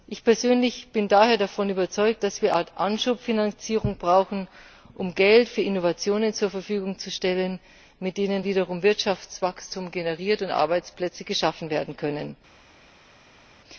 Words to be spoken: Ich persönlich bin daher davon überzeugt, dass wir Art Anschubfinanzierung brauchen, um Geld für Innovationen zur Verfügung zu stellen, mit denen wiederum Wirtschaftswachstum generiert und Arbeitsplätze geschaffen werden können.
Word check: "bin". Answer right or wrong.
right